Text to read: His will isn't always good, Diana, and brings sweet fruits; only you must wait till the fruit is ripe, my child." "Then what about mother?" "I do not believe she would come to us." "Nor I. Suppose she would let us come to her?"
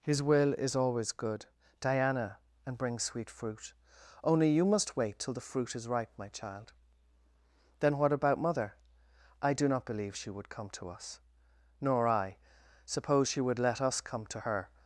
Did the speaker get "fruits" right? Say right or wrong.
wrong